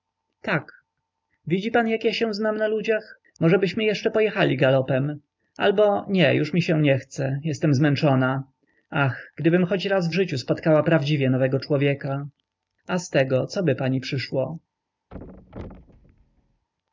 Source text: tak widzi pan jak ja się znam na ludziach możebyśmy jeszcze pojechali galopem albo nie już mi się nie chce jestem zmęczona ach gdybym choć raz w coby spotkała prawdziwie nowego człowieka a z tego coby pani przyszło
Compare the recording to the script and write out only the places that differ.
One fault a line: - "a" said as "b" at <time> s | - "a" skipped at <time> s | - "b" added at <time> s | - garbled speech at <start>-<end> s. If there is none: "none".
- "coby" said as "życiu" at 10.1 s